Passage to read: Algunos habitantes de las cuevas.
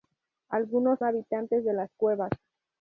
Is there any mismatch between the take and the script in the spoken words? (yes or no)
no